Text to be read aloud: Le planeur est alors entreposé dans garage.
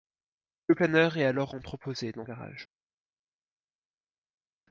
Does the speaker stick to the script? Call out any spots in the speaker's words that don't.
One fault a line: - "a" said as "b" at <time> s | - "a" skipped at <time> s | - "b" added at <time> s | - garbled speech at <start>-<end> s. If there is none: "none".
none